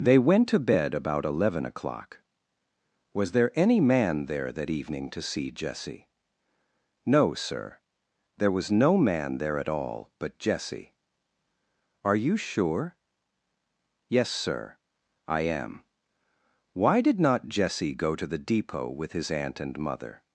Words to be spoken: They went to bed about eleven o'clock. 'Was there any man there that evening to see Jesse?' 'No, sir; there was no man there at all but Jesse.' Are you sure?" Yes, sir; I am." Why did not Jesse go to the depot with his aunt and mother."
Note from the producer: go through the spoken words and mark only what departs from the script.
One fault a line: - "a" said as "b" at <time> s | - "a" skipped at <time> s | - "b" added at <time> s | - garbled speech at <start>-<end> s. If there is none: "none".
none